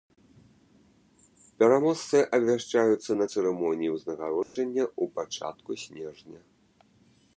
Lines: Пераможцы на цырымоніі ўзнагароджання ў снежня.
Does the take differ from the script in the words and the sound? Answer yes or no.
yes